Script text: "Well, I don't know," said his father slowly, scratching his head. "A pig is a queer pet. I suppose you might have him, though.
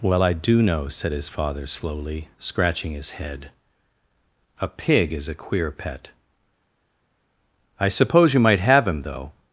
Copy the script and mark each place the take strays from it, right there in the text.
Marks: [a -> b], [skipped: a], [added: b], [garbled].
"Well, I [don't -> do] know," said his father slowly, scratching his head. "A pig is a queer pet. I suppose you might have him, though.